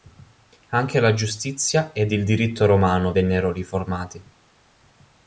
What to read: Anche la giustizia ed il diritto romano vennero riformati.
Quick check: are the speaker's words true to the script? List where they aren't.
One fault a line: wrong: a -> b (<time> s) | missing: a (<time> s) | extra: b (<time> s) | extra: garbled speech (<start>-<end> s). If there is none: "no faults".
no faults